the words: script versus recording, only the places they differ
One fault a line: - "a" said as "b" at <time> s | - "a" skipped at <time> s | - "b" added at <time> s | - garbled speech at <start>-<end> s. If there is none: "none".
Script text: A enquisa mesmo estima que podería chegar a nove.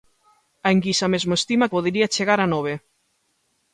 - "que" skipped at 1.7 s